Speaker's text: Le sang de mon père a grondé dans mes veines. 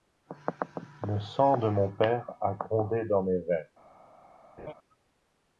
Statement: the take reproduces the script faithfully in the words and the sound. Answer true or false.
false